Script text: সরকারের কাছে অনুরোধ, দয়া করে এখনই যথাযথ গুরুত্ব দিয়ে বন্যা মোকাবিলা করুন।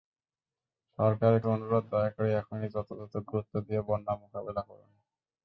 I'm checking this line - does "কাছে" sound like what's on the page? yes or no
no